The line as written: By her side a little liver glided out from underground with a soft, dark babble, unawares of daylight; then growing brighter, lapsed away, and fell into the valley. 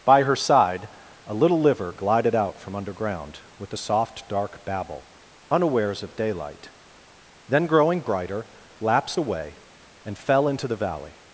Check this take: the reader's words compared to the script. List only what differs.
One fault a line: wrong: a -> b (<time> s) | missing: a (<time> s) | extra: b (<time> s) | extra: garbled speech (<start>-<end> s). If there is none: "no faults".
no faults